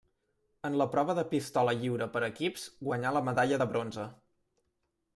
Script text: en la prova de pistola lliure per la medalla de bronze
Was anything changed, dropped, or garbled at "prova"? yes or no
no